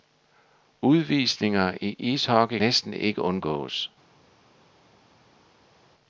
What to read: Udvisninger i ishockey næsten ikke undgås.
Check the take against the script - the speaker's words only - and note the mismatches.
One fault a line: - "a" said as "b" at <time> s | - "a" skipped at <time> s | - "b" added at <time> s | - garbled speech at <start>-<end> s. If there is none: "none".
none